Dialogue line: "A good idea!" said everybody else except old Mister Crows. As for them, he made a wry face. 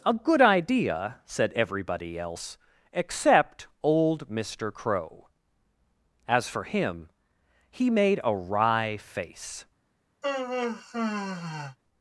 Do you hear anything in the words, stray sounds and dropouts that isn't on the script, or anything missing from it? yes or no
yes